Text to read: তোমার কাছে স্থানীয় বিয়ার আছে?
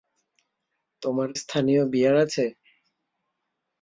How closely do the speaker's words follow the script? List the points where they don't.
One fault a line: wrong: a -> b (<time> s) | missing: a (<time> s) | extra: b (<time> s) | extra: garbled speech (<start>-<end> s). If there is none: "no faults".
missing: কাছে (1.3 s)